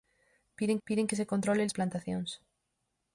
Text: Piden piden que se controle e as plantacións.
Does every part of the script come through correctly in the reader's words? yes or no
yes